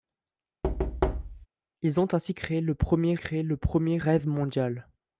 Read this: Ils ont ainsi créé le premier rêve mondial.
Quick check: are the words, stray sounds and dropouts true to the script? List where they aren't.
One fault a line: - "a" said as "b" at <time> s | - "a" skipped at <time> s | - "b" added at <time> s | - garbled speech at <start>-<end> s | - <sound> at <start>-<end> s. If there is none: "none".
- thud at 0.6-1.5 s
- "créé le premier" added at 3.2 s